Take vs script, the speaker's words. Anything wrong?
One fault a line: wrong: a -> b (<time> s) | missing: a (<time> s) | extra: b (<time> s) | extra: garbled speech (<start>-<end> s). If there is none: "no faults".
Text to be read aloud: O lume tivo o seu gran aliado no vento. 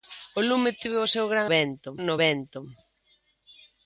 wrong: aliado -> vento (1.5 s)